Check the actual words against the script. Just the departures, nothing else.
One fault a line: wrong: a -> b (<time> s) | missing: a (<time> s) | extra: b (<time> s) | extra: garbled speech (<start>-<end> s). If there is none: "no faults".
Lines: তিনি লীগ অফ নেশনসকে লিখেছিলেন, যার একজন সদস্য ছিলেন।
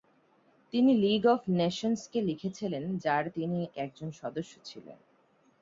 extra: তিনি (3.3 s)